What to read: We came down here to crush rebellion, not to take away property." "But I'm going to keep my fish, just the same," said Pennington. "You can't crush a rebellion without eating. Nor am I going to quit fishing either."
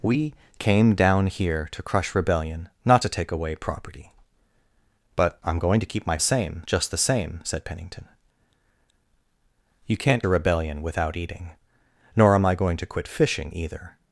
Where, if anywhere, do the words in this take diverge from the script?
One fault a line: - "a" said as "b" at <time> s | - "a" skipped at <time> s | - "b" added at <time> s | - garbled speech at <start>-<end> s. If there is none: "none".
- "fish" said as "same" at 6.2 s
- "crush" skipped at 10.2 s